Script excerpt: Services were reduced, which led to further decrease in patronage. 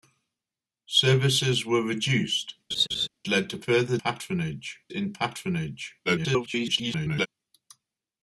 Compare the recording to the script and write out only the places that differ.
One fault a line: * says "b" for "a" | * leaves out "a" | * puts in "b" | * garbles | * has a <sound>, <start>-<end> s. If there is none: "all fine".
* leaves out "which"
* has a laugh, 2.7-3.1 s
* says "patronage" for "decrease"
* garbles